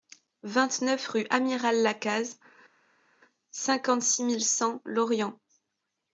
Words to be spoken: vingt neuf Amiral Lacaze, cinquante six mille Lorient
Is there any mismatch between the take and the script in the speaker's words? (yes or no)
yes